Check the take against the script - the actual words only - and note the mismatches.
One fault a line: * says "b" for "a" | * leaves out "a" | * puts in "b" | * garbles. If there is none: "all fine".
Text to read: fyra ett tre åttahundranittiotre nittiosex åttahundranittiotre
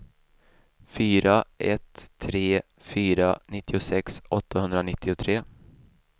* says "fyra" for "åttahundranittiotre"